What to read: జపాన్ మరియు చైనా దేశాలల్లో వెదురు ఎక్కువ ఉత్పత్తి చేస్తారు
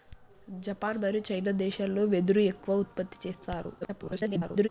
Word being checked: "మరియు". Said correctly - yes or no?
yes